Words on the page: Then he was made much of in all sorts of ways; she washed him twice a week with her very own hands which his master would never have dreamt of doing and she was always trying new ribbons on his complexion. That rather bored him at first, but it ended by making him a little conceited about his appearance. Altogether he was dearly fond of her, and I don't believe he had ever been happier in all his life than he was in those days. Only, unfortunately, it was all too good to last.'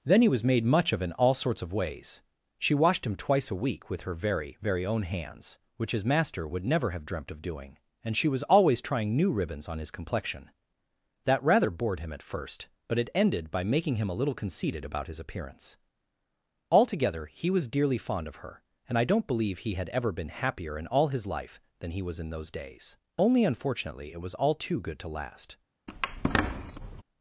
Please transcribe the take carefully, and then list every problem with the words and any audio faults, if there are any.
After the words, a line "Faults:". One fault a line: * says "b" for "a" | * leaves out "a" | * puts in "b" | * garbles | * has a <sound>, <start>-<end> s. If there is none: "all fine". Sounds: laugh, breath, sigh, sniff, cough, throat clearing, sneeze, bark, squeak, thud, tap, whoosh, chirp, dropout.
Then he was made much of in all sorts of ways; she washed him twice a week with her very very own hands which his master would never have dreamt of doing and she was always trying new ribbons on his complexion. That rather bored him at first, but it ended by making him a little conceited about his appearance. Altogether he was dearly fond of her, and I don't believe he had ever been happier in all his life than he was in those days. Only, unfortunately, it was all too good to last.'
Faults:
* puts in "very"
* has a squeak, 25.9-27.0 s